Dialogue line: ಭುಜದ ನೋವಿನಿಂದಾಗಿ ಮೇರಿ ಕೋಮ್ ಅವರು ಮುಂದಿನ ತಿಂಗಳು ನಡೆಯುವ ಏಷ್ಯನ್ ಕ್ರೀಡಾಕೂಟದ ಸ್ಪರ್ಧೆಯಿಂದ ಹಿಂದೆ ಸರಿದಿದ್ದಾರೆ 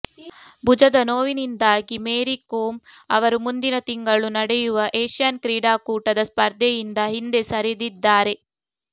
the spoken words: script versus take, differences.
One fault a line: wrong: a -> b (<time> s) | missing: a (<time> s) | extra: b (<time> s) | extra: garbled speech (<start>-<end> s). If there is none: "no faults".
no faults